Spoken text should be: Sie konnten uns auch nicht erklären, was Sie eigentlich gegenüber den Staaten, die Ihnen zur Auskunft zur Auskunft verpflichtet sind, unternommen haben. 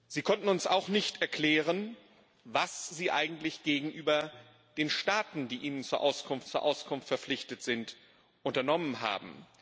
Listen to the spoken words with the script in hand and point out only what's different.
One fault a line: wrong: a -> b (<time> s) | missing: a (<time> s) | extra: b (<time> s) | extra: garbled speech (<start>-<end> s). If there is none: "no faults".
no faults